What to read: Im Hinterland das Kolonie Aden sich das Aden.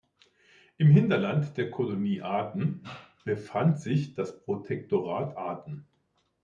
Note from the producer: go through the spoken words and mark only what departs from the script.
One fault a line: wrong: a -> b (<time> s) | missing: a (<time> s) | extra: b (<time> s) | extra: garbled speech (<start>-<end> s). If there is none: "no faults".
wrong: das -> der (1.6 s)
extra: befand (3.2 s)
extra: Protektorat (4.4 s)